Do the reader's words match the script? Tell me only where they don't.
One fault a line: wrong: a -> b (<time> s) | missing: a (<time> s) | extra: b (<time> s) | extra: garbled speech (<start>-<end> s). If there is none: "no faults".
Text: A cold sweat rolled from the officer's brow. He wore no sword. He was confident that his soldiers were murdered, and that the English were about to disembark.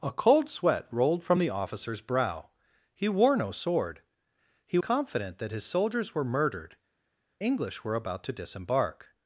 missing: was (4.8 s)
missing: and that the (6.8 s)